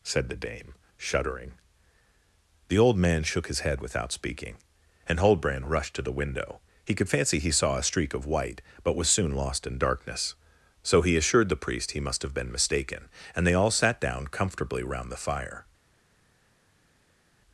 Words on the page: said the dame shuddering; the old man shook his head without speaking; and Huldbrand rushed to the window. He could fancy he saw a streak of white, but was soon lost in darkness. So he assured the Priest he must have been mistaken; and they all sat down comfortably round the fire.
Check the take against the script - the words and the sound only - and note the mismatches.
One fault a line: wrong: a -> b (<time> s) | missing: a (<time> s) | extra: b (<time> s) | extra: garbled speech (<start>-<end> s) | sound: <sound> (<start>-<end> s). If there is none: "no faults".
no faults